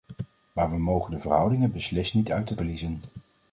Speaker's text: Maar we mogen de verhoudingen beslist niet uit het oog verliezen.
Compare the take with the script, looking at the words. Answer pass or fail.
fail